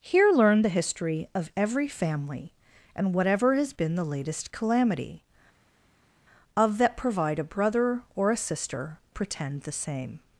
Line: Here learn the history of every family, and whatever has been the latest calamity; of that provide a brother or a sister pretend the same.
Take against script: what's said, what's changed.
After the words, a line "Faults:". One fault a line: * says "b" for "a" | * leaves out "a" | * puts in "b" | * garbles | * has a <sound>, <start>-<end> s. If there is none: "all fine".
Here learn the history of every family, and whatever has been the latest calamity; of that provide a brother or a sister pretend the same.
Faults:
all fine